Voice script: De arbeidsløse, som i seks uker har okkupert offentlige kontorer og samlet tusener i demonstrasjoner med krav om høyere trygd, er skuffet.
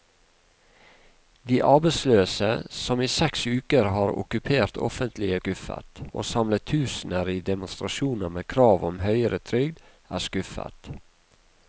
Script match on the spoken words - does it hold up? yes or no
no